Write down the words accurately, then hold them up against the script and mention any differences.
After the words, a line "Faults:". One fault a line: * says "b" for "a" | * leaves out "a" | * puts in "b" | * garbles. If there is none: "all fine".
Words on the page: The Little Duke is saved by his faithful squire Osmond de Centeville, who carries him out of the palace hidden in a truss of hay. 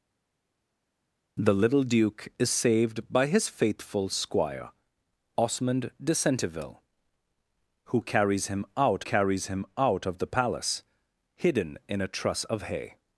The Little Duke is saved by his faithful squire Osmond de Centeville, who carries him out carries him out of the palace hidden in a truss of hay.
Faults:
* puts in "carries him out"